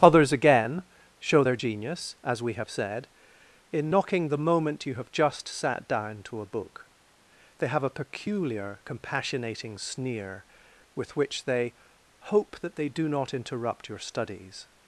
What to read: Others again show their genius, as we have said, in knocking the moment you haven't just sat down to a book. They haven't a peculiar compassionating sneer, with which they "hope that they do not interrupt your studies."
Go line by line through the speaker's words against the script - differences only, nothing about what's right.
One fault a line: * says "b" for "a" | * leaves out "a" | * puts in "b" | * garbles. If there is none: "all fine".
* says "have" for "haven't"
* says "have" for "haven't"